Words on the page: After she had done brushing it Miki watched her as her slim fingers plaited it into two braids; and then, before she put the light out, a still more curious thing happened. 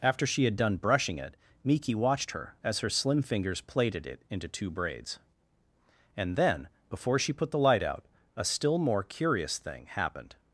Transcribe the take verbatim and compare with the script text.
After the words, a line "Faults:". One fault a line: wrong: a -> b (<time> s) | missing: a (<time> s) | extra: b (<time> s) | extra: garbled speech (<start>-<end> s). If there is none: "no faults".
After she had done brushing it Miki watched her as her slim fingers plaited it into two braids; and then, before she put the light out, a still more curious thing happened.
Faults:
no faults